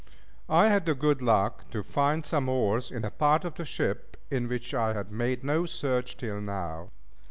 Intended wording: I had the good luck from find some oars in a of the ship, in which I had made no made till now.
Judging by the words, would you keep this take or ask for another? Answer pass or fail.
fail